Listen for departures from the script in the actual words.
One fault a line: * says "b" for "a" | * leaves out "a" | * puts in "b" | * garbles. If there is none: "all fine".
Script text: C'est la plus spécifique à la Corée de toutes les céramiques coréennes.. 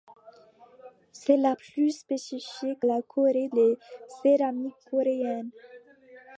* leaves out "à"
* leaves out "de toutes"